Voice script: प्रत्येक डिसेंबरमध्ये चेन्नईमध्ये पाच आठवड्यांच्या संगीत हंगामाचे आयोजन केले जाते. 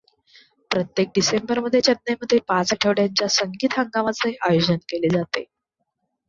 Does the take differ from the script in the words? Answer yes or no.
no